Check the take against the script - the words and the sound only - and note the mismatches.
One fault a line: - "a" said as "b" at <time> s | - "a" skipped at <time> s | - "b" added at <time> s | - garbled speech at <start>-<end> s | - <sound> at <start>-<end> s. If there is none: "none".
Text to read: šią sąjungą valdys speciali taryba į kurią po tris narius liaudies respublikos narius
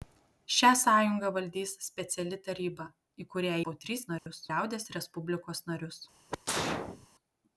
- dropout at 4.2-4.3 s
- sneeze at 6.3-7.1 s